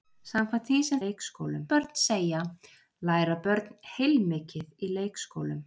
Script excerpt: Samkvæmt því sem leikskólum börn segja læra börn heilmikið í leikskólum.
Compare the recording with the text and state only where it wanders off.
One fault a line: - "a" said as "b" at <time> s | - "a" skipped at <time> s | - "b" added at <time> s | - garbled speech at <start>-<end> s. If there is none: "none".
none